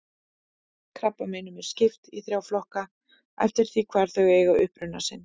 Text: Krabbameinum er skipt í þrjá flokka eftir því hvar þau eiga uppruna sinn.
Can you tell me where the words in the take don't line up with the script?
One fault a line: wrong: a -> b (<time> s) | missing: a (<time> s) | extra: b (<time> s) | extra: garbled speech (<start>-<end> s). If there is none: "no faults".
no faults